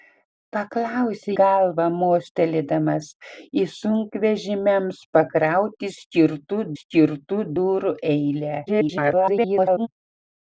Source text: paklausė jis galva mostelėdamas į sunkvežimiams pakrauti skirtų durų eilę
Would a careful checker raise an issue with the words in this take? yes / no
yes